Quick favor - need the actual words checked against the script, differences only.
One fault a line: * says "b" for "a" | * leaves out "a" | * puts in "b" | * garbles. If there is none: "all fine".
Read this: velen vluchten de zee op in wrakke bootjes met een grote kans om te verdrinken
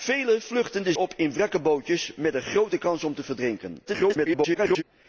* leaves out "zee"
* garbles